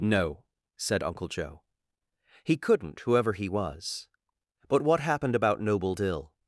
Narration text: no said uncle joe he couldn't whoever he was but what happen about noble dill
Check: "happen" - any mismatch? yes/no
yes